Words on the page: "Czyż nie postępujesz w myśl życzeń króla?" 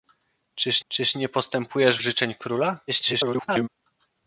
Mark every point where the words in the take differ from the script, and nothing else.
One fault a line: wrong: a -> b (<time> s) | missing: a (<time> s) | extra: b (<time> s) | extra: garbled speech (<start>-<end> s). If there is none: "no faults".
extra: czyż (0.9 s)
missing: w myśl (2.0 s)
extra: garbled speech (2.9-3.7 s)